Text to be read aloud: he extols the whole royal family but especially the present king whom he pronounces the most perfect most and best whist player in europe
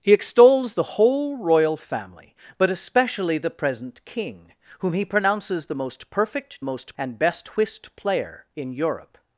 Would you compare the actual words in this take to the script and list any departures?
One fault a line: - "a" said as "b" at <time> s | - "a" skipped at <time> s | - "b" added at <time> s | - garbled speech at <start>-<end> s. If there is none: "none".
none